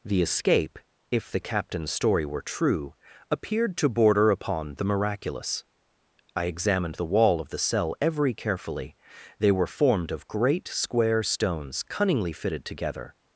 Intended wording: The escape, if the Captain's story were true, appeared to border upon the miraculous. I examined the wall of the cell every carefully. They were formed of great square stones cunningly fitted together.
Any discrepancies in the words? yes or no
no